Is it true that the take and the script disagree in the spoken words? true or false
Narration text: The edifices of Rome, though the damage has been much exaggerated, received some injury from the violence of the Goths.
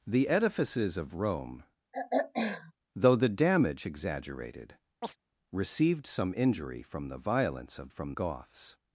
true